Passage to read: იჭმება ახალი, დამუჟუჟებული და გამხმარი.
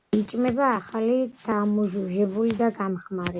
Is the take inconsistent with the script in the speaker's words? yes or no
no